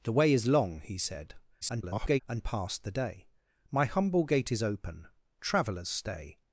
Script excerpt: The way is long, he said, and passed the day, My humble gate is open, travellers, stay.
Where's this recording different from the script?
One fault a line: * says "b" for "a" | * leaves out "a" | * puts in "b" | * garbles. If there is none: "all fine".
* garbles